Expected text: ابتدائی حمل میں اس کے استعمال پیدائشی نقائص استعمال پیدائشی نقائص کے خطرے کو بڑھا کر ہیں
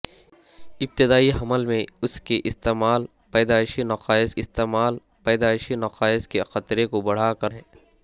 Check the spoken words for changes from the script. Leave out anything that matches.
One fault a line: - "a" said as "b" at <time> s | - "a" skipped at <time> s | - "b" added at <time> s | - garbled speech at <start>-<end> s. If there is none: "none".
none